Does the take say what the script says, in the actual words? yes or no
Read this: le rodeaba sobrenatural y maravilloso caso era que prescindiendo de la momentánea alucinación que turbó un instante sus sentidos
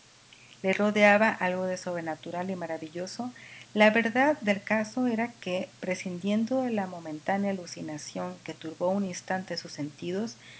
no